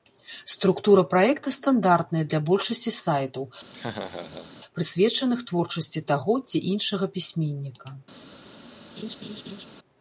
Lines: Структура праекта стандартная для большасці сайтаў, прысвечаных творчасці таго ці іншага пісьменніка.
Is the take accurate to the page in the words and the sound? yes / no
no